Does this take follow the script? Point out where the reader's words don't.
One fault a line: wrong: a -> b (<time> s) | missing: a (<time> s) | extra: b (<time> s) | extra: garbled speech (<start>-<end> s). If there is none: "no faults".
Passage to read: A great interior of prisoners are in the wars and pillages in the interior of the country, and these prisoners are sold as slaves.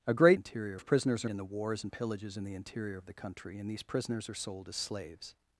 no faults